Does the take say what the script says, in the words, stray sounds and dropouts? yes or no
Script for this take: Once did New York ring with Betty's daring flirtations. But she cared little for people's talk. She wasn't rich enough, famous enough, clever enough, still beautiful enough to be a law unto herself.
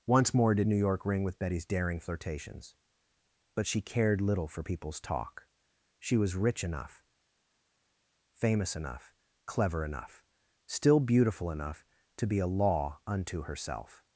no